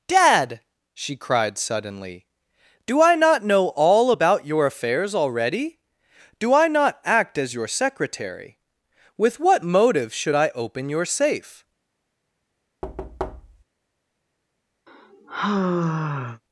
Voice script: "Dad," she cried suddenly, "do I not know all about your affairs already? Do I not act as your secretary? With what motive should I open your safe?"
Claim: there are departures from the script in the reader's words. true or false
false